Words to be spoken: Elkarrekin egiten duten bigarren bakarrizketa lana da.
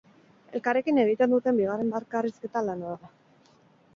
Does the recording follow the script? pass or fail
pass